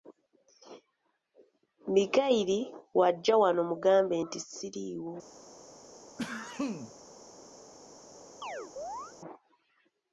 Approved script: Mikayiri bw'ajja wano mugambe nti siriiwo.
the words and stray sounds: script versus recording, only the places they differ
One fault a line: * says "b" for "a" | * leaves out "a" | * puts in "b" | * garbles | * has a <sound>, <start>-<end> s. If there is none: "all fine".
* has a sneeze, 6.2-6.9 s
* has a chirp, 8.4-9.1 s